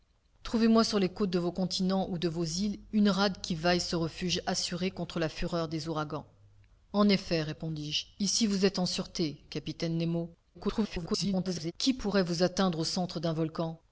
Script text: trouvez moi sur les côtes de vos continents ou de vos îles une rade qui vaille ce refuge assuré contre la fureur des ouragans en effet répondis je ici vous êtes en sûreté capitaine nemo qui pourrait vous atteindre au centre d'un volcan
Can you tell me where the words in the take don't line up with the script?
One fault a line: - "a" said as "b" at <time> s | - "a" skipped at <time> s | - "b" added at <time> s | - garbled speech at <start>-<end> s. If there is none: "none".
- garbled speech at 10.5-11.7 s